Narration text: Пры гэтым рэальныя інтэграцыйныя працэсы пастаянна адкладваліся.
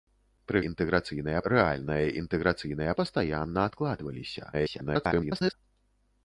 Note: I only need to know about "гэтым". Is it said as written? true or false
false